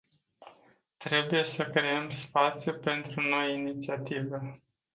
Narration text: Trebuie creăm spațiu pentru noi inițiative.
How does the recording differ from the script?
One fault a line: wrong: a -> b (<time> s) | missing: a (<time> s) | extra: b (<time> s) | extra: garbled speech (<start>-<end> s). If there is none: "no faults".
extra: să (1.4 s)